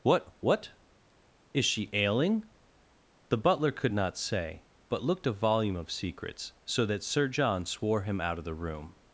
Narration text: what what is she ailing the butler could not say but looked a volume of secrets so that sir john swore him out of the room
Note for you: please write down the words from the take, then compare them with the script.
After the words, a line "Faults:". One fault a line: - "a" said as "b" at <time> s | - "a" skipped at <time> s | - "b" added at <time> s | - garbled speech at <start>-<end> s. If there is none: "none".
what what is she ailing the butler could not say but looked a volume of secrets so that sir john swore him out of the room
Faults:
none